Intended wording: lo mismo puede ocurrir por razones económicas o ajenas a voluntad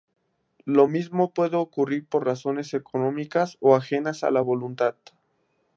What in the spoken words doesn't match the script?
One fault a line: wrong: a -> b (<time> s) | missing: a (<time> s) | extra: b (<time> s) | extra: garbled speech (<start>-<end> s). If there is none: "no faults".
extra: la (4.3 s)